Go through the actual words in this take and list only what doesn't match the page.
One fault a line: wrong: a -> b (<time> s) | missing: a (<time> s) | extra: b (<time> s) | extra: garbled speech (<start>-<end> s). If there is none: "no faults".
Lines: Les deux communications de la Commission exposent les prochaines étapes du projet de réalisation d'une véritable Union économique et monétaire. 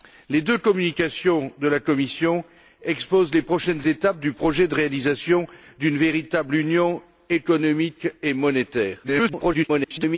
extra: garbled speech (9.0-10.2 s)